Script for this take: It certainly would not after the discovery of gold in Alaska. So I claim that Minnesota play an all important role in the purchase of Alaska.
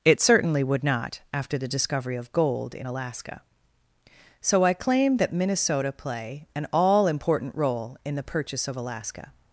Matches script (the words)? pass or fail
pass